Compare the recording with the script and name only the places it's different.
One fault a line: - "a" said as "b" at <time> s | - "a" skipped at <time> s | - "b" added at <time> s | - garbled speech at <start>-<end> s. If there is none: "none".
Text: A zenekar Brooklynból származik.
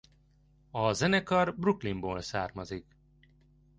none